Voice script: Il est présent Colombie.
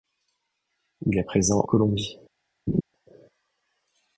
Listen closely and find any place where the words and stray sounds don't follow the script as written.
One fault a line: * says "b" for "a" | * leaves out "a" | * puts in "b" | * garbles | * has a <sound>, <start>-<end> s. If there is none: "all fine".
* has a laugh, 2.7-2.8 s